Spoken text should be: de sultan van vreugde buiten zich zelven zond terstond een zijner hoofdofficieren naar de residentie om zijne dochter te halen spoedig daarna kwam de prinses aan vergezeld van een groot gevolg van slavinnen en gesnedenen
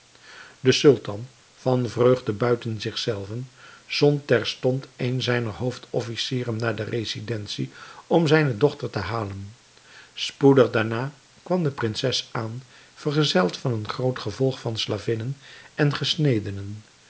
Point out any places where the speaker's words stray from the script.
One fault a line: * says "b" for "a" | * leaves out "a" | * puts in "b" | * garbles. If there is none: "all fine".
all fine